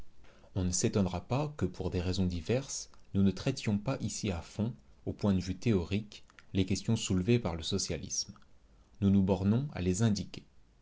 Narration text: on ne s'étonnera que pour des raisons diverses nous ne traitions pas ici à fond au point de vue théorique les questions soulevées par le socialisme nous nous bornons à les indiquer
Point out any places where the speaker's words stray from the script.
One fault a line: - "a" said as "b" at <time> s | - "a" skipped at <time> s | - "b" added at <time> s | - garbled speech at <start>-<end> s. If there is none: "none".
- "pas" added at 1.3 s